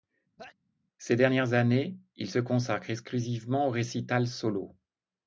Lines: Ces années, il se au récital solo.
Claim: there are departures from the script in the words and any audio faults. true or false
true